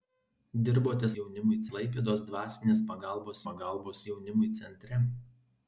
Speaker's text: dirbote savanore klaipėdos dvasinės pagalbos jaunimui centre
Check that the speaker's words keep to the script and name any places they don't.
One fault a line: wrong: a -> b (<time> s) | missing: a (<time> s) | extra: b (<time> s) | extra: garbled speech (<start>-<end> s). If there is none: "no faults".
wrong: savanore -> jaunimui (1.2 s)
extra: pagalbos (3.5 s)